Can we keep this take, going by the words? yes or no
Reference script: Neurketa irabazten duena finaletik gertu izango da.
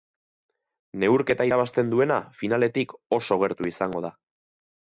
no